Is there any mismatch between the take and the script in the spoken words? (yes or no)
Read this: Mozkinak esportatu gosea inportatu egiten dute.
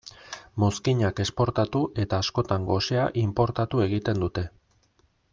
yes